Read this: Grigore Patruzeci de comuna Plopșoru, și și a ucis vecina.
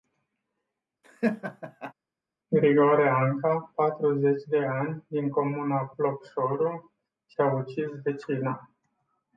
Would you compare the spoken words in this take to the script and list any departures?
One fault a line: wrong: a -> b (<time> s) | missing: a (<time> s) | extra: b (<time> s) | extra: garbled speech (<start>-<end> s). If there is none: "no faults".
extra: Anca (3.1 s)
extra: ani din (4.6 s)
missing: și (7.4 s)